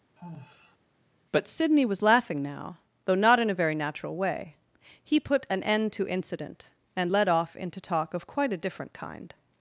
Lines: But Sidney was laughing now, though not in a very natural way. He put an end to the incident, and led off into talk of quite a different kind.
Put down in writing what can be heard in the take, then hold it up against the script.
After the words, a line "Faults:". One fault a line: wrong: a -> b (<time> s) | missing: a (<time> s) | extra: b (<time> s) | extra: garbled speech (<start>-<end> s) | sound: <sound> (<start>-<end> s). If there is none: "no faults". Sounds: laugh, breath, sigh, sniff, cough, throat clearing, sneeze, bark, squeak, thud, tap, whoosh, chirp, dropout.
But Sidney was laughing now, though not in a very natural way. He put an end to incident, and led off into talk of quite a different kind.
Faults:
sound: sigh (0.2-0.8 s)
missing: the (6.1 s)